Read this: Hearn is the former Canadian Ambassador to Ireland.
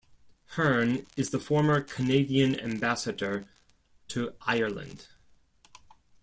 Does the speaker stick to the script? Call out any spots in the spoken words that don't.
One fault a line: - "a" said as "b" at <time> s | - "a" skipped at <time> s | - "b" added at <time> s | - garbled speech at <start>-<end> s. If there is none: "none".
none